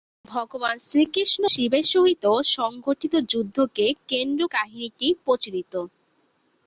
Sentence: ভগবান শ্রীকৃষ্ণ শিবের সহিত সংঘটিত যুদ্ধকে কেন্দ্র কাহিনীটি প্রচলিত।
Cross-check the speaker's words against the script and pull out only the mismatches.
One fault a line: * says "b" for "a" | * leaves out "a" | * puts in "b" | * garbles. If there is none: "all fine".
all fine